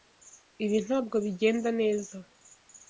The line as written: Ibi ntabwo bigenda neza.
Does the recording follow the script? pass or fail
pass